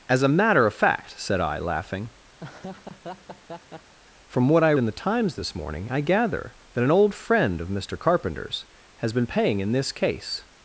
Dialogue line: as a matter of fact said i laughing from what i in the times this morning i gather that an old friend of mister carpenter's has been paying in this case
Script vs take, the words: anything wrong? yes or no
no